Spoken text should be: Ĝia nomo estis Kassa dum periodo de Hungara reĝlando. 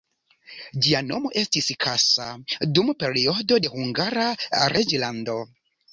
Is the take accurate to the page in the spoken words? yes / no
yes